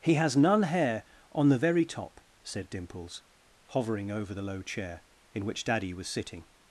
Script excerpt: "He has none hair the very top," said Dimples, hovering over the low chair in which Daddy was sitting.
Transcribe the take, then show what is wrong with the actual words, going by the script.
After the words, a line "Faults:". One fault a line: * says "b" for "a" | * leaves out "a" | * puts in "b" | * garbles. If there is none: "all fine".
"He has none hair on the very top," said Dimples, hovering over the low chair in which Daddy was sitting.
Faults:
* puts in "on"